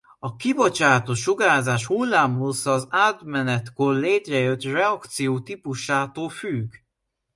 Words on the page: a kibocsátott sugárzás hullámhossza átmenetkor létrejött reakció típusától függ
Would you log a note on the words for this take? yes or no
yes